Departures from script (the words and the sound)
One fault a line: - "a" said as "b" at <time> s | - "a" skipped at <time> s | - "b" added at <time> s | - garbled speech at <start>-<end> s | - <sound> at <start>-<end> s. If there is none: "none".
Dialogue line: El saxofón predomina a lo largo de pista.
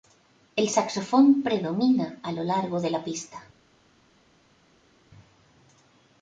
- "la" added at 2.9 s